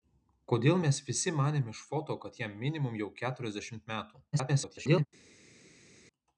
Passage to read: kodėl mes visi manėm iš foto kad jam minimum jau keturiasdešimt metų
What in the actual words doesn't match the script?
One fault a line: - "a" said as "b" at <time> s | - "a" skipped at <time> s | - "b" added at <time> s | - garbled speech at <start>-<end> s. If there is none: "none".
- garbled speech at 4.3-5.1 s